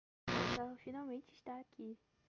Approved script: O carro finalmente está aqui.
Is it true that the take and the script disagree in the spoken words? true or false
false